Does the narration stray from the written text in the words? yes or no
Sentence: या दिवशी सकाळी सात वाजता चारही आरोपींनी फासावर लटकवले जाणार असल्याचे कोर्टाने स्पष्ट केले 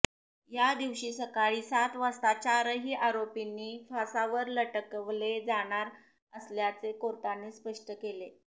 no